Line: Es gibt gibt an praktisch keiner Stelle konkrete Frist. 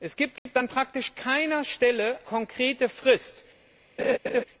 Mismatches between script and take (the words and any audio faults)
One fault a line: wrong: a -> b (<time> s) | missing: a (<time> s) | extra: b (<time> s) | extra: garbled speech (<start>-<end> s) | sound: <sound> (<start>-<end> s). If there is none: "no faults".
sound: dropout (0.4-0.5 s)
sound: laugh (4.0-4.4 s)